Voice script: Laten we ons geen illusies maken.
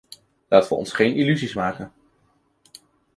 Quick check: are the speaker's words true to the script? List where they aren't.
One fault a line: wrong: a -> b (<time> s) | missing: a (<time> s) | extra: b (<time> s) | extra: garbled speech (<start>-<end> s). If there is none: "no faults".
no faults